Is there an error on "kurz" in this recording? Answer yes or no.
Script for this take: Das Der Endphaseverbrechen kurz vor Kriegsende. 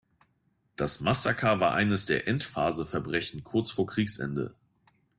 no